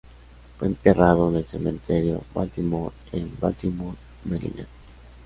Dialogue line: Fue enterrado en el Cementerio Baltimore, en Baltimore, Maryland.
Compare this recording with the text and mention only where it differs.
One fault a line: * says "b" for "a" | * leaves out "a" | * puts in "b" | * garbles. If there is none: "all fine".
all fine